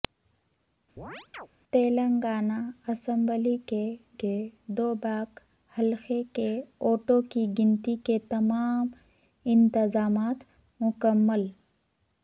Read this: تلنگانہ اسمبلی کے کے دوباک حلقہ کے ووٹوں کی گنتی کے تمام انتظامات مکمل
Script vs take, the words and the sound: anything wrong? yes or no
yes